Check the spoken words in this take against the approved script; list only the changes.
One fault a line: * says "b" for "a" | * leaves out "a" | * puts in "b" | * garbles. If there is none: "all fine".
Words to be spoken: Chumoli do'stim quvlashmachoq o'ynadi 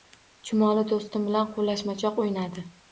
* puts in "bilan"